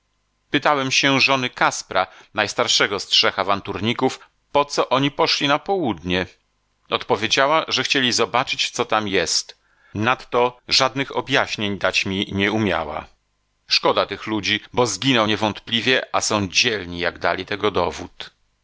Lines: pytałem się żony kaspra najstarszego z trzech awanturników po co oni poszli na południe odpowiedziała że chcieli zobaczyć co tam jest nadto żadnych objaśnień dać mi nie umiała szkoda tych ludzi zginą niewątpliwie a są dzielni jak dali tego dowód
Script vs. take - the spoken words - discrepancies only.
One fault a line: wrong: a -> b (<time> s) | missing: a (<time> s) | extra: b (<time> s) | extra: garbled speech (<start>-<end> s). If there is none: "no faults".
extra: bo (14.7 s)